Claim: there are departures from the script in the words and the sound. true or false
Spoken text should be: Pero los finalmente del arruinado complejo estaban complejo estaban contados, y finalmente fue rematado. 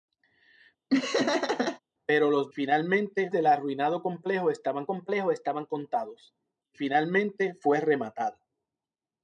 true